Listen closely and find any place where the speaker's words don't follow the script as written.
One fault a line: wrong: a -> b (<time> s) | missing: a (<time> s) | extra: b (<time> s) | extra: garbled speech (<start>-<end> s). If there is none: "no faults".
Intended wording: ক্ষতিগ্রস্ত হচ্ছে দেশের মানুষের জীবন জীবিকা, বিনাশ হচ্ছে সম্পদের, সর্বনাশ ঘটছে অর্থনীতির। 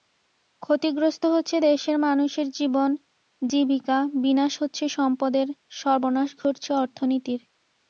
no faults